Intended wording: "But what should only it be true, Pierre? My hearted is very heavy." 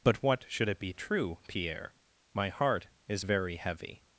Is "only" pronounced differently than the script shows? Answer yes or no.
yes